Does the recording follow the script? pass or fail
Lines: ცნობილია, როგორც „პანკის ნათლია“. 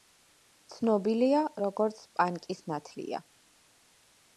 pass